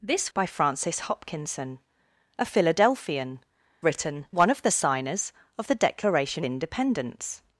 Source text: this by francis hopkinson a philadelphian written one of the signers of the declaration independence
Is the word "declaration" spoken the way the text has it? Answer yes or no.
yes